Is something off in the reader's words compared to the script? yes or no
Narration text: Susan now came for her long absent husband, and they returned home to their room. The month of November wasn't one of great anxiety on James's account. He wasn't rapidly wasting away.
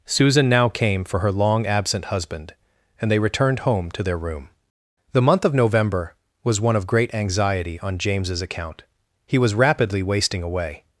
yes